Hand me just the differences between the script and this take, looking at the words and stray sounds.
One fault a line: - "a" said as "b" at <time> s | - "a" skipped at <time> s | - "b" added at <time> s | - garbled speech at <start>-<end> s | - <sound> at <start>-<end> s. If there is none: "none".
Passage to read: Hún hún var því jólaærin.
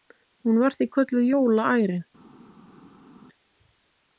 - "hún" skipped at 0.6 s
- "kölluð" added at 0.9 s